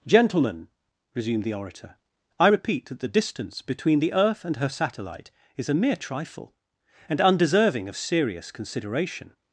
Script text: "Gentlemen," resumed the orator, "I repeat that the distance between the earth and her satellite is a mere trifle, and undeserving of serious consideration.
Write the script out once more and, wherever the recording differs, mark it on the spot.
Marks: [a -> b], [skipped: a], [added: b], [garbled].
"Gentlemen," resumed the orator, "I repeat that the distance between the earth and her satellite is a mere trifle, and undeserving of serious consideration.